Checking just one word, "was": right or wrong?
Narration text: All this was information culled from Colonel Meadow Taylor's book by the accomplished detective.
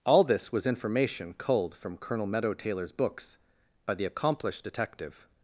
right